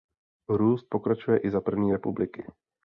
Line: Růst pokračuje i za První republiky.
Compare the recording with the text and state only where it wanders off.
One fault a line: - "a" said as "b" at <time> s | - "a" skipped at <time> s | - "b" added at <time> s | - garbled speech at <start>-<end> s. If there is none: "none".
none